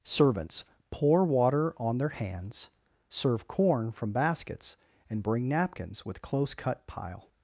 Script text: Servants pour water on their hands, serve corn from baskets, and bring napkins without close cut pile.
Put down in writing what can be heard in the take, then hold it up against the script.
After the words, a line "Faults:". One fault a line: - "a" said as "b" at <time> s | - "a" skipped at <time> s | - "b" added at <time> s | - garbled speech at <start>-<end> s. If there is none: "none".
Servants pour water on their hands, serve corn from baskets, and bring napkins with close cut pile.
Faults:
- "without" said as "with" at 6.1 s